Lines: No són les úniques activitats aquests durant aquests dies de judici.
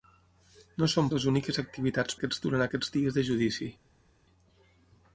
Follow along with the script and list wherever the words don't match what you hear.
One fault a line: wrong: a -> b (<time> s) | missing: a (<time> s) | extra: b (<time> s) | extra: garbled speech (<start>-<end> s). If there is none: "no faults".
no faults